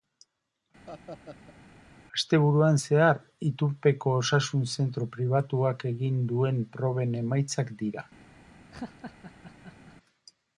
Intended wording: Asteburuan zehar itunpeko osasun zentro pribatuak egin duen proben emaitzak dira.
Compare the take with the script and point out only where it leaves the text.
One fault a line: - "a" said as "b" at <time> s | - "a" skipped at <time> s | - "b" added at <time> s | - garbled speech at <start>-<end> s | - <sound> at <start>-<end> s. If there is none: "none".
- laugh at 0.9-1.6 s
- laugh at 8.7-10.0 s